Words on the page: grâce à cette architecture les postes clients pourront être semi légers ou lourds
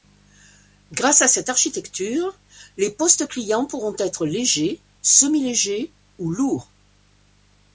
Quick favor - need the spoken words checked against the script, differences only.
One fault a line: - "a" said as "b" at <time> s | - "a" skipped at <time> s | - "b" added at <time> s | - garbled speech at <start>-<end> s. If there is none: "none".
- "légers" added at 4.2 s